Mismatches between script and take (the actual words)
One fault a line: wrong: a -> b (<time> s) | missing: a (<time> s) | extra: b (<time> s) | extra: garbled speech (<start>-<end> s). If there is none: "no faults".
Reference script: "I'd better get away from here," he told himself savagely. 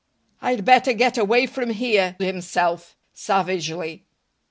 missing: he told (2.1 s)